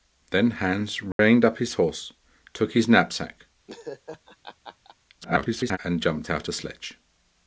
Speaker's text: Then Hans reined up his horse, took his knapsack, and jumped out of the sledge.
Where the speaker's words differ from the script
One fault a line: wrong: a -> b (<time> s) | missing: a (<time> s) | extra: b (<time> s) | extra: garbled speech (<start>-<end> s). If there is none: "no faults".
extra: garbled speech (5.2-5.8 s)
missing: of (6.5 s)